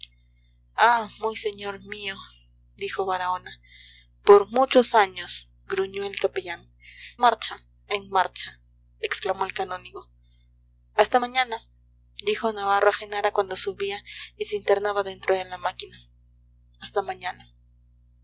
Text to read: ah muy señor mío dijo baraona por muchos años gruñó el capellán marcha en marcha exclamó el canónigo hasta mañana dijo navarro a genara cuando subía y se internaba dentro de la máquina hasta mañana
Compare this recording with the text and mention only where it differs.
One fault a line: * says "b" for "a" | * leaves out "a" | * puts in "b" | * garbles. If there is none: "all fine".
all fine